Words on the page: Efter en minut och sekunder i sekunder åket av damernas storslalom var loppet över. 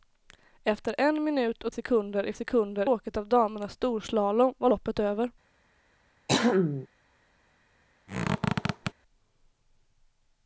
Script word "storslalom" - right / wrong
right